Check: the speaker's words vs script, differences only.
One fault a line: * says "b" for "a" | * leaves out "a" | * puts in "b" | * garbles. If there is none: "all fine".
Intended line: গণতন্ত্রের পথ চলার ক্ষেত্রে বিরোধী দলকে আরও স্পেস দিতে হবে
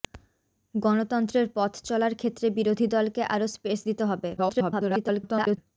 * garbles